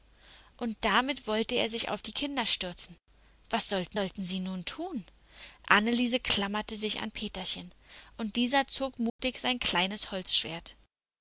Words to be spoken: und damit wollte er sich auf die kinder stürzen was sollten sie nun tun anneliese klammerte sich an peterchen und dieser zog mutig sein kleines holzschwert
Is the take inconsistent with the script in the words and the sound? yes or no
yes